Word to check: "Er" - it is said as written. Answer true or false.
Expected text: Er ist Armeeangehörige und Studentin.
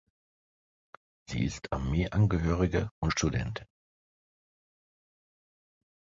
false